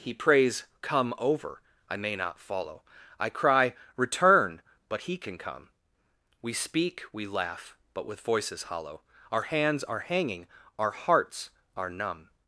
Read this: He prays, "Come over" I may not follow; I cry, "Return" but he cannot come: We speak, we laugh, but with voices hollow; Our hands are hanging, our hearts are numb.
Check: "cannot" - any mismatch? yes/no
yes